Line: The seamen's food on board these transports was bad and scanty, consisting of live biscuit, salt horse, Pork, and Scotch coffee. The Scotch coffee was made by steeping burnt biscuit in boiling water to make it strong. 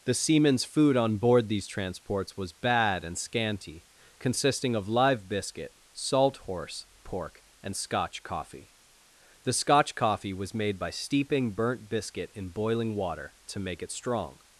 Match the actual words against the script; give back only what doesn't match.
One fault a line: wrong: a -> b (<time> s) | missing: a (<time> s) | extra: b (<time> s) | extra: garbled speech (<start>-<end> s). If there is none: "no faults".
no faults